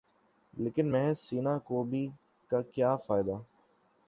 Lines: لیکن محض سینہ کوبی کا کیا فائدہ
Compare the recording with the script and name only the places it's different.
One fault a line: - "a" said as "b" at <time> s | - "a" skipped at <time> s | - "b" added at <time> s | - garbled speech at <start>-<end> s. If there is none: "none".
none